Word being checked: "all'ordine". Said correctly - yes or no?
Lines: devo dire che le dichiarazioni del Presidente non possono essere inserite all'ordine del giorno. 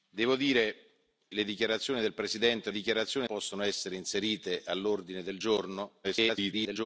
yes